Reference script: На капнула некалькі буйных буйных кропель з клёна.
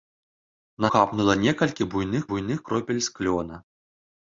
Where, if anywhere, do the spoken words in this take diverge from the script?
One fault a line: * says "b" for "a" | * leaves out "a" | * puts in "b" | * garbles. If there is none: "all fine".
all fine